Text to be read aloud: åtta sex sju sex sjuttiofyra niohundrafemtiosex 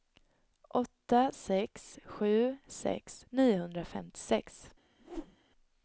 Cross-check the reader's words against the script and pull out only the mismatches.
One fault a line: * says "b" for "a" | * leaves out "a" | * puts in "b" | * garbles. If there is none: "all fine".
* leaves out "sjuttiofyra"